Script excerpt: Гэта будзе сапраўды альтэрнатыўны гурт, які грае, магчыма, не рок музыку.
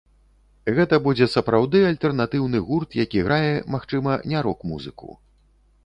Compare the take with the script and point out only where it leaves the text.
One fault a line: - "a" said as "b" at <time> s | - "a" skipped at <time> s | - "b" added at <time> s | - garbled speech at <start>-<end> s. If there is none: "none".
none